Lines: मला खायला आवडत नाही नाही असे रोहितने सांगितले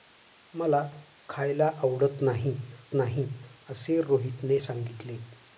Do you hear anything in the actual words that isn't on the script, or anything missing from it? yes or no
no